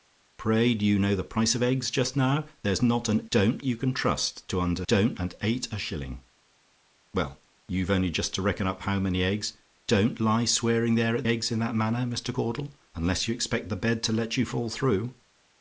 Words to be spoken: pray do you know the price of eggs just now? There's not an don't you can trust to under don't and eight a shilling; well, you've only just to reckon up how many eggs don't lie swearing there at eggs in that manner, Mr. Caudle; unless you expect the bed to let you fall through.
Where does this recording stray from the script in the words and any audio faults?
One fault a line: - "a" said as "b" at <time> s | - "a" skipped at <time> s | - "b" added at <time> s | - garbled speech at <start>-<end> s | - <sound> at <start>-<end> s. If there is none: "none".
none